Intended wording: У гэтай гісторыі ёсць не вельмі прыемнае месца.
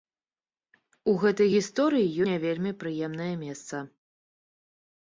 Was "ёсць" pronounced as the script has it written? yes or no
no